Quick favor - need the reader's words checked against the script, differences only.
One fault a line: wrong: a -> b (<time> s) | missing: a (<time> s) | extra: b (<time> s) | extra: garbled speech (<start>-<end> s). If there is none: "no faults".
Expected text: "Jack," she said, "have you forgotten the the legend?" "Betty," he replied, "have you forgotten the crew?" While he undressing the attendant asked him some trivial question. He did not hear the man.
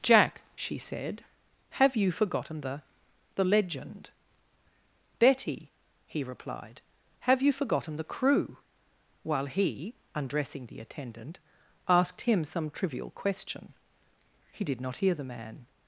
no faults